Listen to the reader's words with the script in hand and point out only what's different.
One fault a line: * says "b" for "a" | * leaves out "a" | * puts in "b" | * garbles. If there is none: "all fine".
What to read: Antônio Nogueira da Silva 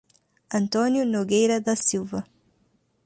all fine